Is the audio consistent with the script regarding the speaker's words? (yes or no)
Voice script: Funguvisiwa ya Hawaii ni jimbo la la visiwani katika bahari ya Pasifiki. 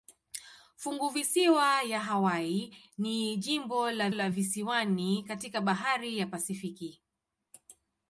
yes